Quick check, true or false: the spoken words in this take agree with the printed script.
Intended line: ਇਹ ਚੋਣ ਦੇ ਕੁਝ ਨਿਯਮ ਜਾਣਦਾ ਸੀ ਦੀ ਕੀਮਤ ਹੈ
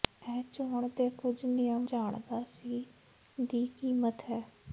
true